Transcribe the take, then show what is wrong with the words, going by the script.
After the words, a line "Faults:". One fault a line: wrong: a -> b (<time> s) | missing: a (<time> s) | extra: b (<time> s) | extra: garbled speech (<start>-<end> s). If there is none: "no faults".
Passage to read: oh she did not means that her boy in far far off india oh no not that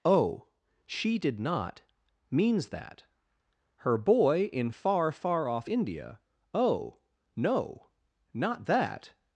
oh she did not means that her boy in far far off india oh no not that
Faults:
no faults